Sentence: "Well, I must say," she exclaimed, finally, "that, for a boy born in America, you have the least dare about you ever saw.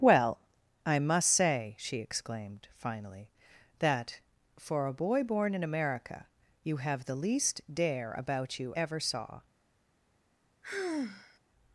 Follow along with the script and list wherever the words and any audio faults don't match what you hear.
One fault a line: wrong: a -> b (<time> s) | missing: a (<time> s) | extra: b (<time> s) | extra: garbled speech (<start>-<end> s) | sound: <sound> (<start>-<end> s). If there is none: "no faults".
sound: sigh (10.6-11.4 s)